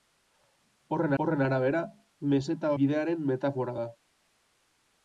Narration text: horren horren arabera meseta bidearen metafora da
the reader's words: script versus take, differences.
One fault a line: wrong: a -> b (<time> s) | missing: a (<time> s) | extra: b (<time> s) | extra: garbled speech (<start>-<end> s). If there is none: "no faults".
no faults